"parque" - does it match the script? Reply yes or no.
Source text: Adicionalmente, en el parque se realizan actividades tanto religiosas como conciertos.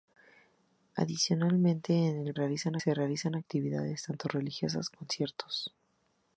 no